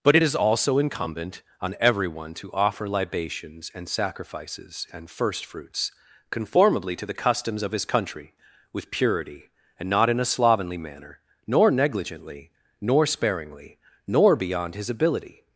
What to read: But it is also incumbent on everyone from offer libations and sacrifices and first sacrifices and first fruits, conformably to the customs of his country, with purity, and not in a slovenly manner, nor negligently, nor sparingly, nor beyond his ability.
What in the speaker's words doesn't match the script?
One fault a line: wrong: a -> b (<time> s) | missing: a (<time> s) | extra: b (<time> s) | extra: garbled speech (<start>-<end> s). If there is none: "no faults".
wrong: from -> to (2.3 s)
missing: sacrifices and first (5.4 s)